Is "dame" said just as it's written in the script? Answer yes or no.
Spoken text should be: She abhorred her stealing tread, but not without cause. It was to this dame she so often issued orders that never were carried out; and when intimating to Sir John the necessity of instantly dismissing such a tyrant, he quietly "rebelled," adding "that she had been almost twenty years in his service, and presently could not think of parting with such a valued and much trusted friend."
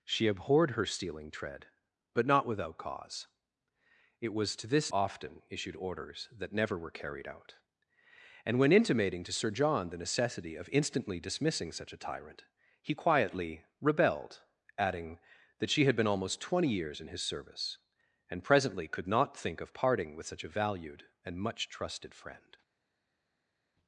no